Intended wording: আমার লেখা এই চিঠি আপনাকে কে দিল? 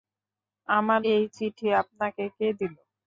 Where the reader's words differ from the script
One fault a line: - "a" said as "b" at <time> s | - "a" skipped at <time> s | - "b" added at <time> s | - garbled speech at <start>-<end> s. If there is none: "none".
- "লেখা" skipped at 1.0 s